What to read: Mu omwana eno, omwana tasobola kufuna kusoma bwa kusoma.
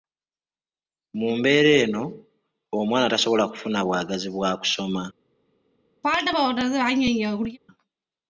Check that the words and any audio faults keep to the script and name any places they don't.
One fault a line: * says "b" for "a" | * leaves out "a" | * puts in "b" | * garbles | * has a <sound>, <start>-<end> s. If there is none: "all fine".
* says "mbeera" for "omwana"
* says "bwagazi" for "kusoma"
* has a throat clearing, 6.0-7.6 s